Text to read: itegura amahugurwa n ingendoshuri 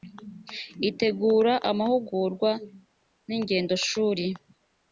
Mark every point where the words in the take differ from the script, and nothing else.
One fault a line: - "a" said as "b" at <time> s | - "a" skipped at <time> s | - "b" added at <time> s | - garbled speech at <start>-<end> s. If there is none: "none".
none